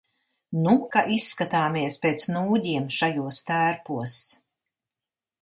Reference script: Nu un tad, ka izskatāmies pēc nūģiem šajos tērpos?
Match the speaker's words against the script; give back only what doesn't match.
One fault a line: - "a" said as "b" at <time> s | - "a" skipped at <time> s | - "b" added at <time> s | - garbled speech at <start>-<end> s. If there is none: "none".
- "un tad" skipped at 0.7 s